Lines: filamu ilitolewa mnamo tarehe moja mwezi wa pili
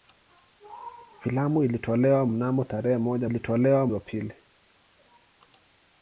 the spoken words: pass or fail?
fail